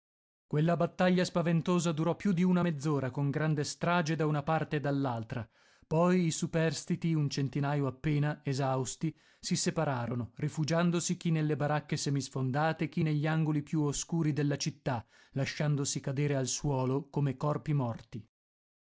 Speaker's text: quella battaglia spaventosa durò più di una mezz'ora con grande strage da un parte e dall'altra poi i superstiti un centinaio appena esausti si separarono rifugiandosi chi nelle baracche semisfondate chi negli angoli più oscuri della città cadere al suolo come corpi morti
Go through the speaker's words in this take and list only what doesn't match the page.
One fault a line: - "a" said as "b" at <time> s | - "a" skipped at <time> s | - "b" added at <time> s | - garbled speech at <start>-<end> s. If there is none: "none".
- "un" said as "una" at 4.3 s
- "lasciandosi" added at 15.3 s